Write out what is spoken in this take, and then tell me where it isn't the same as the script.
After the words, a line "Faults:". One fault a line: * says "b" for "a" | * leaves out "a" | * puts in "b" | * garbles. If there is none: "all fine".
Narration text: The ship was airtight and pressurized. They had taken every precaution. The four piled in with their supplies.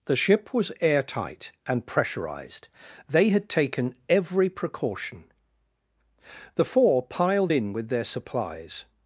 The ship was airtight and pressurized. They had taken every precaution. The four piled in with their supplies.
Faults:
all fine